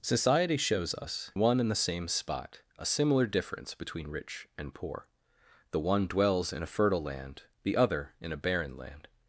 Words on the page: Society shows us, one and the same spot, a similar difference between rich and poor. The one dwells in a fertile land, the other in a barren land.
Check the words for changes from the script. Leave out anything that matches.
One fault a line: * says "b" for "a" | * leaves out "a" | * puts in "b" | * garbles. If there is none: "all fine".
all fine